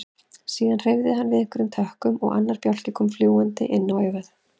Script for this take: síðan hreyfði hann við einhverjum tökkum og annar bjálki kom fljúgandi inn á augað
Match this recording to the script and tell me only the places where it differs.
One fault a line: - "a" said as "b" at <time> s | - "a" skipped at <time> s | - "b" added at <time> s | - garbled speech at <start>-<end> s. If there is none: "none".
none